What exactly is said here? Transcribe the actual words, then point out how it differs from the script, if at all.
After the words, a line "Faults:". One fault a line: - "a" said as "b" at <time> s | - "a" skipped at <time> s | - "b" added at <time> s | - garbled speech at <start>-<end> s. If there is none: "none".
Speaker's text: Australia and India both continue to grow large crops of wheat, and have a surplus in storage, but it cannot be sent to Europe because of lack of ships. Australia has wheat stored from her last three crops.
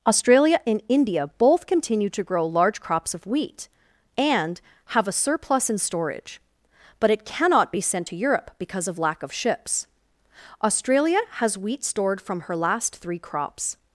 Australia and India both continue to grow large crops of wheat, and have a surplus in storage, but it cannot be sent to Europe because of lack of ships. Australia has wheat stored from her last three crops.
Faults:
none